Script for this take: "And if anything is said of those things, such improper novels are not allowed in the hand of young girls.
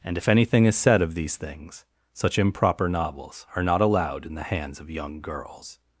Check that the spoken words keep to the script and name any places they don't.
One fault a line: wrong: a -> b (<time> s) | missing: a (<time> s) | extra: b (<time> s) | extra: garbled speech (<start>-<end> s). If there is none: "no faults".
wrong: those -> these (1.1 s)
wrong: hand -> hands (4.4 s)